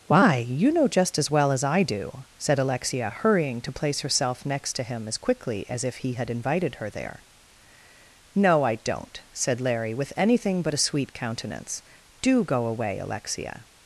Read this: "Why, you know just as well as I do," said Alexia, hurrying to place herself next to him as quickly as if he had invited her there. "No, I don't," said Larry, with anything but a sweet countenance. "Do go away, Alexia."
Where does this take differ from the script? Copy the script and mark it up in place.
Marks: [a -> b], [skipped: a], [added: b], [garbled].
"Why, you know just as well as I do," said Alexia, hurrying to place herself next to him as quickly as if he had invited her there. "No, I don't," said Larry, with anything but a sweet countenance. "Do go away, Alexia."